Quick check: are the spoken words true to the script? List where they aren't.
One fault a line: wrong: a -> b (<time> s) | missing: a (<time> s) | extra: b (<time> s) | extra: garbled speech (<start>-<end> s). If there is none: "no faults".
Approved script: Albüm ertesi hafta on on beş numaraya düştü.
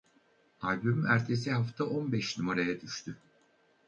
missing: on (2.1 s)